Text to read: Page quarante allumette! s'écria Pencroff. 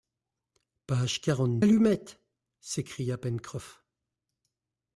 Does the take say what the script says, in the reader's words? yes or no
yes